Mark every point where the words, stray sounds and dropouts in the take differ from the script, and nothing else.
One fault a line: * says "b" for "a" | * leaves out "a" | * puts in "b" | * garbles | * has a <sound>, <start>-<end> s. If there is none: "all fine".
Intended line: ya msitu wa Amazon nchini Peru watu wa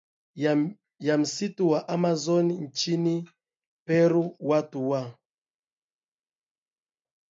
all fine